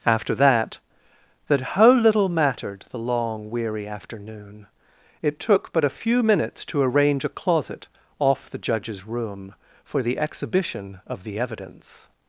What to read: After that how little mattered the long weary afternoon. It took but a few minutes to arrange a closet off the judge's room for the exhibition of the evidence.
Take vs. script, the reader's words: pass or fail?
fail